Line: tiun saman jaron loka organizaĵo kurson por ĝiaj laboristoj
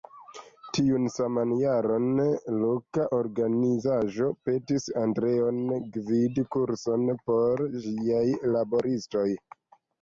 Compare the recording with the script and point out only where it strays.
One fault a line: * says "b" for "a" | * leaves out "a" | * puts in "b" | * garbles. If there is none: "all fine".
* puts in "petis andreon gvidi"